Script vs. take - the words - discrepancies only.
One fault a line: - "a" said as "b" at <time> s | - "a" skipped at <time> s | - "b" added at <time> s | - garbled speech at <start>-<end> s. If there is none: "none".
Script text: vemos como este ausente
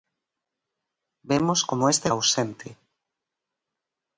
none